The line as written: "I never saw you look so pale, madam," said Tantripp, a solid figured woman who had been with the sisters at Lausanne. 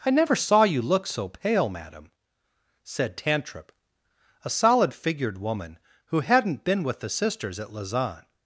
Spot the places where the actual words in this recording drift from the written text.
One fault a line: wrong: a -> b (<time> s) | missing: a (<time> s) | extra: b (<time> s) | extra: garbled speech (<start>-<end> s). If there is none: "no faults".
wrong: had -> hadn't (6.2 s)